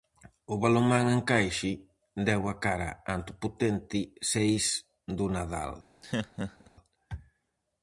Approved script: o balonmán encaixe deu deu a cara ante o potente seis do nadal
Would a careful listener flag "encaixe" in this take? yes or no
no